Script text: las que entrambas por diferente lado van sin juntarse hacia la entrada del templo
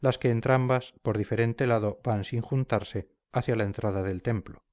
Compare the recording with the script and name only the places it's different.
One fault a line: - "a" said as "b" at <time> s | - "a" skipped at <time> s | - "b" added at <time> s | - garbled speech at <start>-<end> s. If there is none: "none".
none